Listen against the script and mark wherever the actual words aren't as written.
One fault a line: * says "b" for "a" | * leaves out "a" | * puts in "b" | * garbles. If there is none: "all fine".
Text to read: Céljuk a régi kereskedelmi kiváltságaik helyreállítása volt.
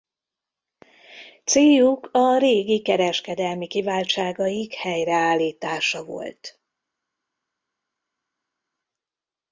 all fine